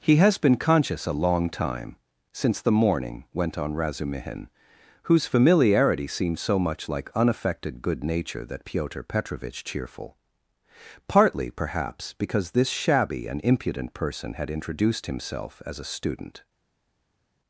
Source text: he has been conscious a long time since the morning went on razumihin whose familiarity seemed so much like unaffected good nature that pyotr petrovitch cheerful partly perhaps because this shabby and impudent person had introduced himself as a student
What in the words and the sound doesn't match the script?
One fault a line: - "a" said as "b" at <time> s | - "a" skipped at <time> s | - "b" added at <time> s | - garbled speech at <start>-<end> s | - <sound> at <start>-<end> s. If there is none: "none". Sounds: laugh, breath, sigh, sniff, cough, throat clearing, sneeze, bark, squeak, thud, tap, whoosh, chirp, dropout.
none